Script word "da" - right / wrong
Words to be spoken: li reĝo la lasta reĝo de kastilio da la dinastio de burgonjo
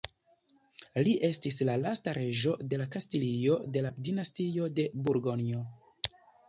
wrong